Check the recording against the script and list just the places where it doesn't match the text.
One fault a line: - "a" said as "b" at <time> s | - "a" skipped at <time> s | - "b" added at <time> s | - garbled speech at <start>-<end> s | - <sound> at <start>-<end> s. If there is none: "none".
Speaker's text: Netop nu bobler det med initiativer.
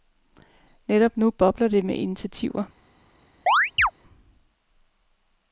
- chirp at 3.5-3.9 s